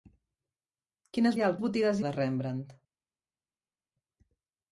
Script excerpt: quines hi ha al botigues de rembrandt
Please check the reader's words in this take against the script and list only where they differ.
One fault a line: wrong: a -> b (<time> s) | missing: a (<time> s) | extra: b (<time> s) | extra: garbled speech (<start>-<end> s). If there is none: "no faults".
no faults